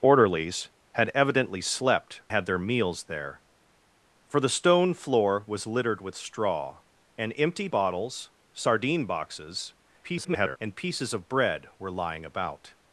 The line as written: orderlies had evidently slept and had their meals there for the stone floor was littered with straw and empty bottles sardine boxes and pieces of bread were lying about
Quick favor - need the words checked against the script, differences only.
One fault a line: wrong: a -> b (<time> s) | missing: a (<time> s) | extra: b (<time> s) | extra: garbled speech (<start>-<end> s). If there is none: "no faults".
missing: and (2.2 s)
extra: garbled speech (10.0-10.6 s)